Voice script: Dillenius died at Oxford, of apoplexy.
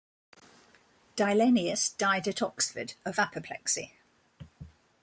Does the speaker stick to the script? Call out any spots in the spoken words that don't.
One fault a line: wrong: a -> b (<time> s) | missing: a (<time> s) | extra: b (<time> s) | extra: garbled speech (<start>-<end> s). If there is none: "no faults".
no faults